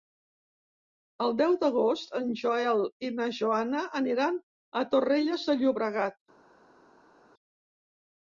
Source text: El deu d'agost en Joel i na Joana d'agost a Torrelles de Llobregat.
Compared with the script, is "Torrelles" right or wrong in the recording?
right